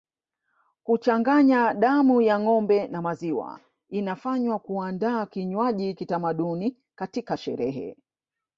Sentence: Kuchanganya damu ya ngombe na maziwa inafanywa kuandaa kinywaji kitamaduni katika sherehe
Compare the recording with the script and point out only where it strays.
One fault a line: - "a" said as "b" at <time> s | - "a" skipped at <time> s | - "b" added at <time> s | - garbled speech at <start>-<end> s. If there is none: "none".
none